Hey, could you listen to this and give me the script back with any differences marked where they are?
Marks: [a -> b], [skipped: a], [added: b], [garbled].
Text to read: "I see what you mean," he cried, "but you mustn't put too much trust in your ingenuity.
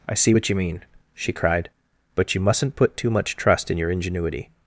"I see what you mean," [he -> she] cried, "but you mustn't put too much trust in your ingenuity.